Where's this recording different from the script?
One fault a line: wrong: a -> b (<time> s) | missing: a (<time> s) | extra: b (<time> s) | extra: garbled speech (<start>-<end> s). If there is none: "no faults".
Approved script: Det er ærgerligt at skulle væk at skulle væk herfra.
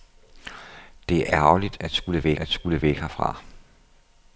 no faults